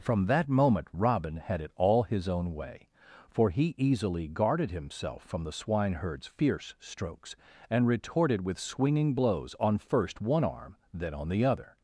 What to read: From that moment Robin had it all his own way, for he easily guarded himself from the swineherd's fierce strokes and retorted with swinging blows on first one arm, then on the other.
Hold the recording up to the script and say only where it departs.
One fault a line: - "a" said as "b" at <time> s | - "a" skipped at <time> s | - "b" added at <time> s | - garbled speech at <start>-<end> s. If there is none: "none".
none